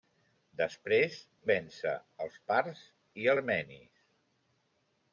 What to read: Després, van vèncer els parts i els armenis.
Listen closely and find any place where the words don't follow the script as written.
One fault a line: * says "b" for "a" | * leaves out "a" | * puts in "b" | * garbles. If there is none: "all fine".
* leaves out "van"
* leaves out "els"